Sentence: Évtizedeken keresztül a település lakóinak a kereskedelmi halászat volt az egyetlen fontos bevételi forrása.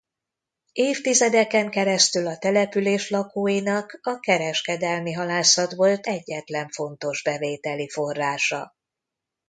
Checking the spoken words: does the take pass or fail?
fail